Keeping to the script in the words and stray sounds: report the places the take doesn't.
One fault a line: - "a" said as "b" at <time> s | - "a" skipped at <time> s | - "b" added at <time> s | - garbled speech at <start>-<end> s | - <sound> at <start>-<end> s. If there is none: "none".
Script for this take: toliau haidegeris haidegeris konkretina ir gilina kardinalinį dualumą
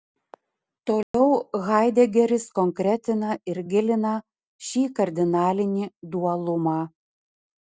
- dropout at 1.0-1.1 s
- "haidegeris" skipped at 2.5 s
- "šį" added at 4.7 s